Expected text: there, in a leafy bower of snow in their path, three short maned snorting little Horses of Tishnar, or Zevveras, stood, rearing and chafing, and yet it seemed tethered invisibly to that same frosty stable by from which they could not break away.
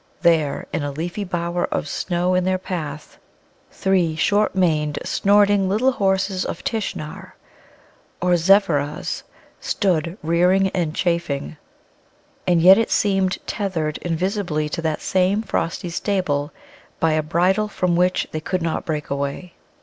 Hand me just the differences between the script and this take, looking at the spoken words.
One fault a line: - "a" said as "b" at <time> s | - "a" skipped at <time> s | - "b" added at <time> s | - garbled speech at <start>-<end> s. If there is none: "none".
- "a bridle" added at 17.1 s